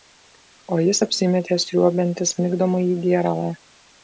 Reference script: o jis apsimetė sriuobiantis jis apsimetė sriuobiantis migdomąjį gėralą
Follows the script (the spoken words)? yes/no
no